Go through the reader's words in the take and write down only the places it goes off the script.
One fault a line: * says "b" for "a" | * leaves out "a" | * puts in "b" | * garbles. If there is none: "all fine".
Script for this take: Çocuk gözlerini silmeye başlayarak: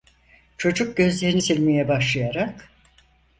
all fine